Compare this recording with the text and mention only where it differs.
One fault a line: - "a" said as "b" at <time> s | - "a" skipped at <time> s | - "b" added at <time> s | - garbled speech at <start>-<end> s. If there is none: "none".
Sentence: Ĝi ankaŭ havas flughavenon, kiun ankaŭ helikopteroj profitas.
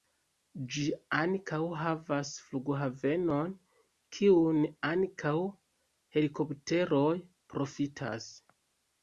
none